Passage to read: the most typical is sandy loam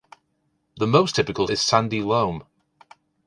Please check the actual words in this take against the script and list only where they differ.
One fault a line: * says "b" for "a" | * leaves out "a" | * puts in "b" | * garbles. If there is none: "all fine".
all fine